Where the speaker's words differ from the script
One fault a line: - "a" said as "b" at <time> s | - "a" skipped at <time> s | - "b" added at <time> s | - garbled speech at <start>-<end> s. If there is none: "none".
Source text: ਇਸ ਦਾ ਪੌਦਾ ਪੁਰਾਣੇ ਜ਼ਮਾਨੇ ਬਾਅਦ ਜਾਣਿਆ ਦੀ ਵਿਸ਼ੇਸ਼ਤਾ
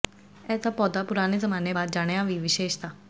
none